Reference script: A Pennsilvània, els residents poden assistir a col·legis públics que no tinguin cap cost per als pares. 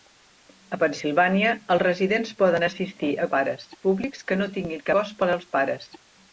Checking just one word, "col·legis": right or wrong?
wrong